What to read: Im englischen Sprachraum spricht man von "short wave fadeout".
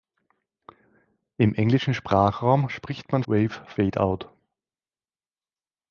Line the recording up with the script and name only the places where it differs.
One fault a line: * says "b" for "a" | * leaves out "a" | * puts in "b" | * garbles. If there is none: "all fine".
* leaves out "von short"